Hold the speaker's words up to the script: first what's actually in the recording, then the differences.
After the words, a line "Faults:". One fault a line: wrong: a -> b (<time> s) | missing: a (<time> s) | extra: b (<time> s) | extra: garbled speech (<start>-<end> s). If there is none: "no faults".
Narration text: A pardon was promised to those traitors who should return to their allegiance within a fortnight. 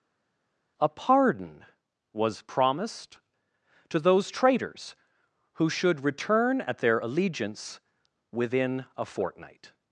A pardon was promised to those traitors who should return at their allegiance within a fortnight.
Faults:
wrong: to -> at (6.6 s)